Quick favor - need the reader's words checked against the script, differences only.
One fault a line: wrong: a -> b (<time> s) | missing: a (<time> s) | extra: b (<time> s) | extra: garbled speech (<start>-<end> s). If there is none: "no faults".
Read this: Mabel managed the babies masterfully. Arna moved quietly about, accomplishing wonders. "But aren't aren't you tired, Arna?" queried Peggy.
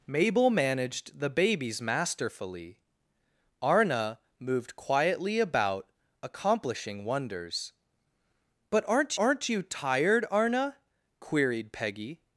no faults